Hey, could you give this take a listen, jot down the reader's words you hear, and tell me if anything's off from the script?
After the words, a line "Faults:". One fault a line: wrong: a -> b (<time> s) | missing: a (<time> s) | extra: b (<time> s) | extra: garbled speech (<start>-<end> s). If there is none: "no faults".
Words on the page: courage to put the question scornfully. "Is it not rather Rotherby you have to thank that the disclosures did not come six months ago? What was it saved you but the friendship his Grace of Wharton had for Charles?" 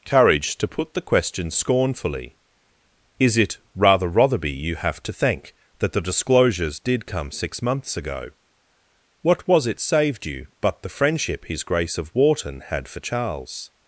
courage to put the question scornfully. "Is it rather Rotherby you have to thank that the disclosures did come six months ago? What was it saved you but the friendship his Grace of Wharton had for Charles?"
Faults:
missing: not (3.6 s)
missing: not (7.0 s)